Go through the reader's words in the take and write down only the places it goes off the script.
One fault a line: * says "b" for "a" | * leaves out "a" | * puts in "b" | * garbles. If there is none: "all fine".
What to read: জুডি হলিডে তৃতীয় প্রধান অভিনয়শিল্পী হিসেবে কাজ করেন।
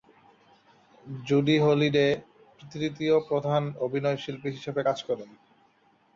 all fine